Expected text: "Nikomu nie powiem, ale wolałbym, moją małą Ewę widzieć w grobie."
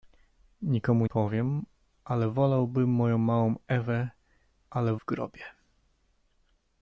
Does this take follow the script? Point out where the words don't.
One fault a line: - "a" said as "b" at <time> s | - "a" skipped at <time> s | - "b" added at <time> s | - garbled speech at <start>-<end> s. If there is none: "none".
- "nie" skipped at 1.1 s
- "widzieć" said as "ale" at 4.7 s